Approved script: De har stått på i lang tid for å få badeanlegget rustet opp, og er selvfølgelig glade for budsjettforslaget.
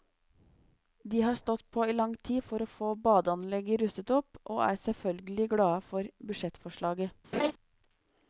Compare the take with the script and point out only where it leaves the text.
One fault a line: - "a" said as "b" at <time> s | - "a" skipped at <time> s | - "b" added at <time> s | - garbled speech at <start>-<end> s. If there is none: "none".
none